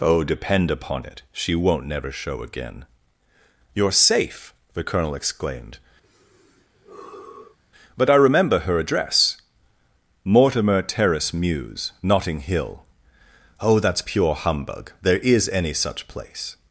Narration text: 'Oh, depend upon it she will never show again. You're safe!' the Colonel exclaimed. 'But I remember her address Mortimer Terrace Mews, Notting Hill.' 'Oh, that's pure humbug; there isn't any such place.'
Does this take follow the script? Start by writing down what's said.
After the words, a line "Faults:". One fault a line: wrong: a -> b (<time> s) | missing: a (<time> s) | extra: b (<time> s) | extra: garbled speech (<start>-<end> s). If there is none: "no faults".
'Oh, depend upon it she won't never show again. You're safe!' the Colonel exclaimed. 'But I remember her address Mortimer Terrace Mews, Notting Hill.' 'Oh, that's pure humbug; there is any such place.'
Faults:
wrong: will -> won't (1.5 s)
wrong: isn't -> is (15.2 s)